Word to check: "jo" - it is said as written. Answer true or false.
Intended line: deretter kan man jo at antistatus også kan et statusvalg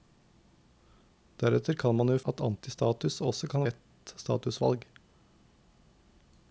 true